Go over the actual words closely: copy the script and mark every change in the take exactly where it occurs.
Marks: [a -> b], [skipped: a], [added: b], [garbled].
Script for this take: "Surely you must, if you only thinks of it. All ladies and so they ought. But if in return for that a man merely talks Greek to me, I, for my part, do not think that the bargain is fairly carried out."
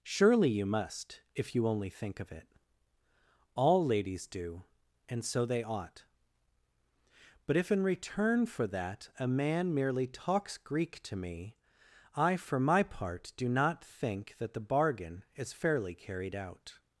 "Surely you must, if you only [thinks -> think] of it. All ladies [added: do] and so they ought. But if in return for that a man merely talks Greek to me, I, for my part, do not think that the bargain is fairly carried out."